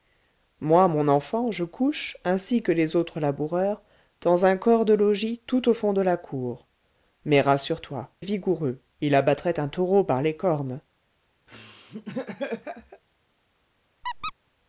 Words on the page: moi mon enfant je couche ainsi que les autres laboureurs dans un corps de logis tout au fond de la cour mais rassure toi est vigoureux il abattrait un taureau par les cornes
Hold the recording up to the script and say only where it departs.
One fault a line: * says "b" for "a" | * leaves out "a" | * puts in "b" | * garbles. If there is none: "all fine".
all fine